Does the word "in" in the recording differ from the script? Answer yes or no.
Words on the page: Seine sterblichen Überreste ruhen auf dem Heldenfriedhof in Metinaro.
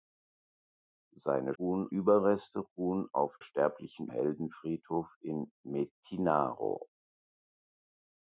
no